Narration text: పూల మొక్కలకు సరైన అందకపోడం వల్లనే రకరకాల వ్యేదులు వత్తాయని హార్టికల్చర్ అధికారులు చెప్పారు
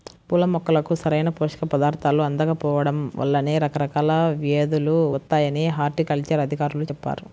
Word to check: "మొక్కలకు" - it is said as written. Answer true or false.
true